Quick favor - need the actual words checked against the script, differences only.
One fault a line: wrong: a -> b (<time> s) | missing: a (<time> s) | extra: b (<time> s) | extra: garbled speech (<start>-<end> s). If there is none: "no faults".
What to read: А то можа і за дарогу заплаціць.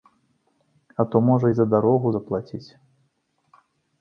no faults